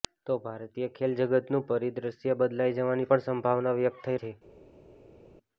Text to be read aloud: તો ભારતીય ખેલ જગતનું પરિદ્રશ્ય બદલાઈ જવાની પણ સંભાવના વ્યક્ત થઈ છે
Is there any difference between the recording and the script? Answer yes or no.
no